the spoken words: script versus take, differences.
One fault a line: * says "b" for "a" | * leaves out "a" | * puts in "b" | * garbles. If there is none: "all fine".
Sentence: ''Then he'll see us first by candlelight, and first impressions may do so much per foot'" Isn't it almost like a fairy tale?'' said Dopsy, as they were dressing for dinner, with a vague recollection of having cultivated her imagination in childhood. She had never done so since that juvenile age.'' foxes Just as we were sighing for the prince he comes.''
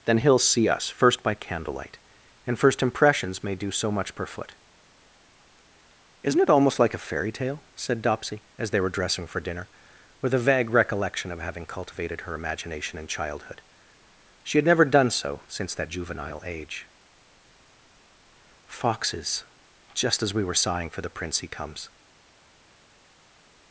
all fine